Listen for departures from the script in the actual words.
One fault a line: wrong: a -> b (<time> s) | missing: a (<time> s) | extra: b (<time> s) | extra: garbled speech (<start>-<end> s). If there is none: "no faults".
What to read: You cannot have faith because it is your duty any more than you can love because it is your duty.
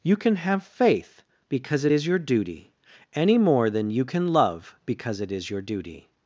wrong: cannot -> can (0.1 s)